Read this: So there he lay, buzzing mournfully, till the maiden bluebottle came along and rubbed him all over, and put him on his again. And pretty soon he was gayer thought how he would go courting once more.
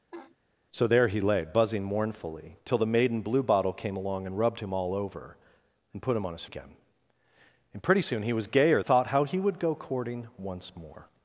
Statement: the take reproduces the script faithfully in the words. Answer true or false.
true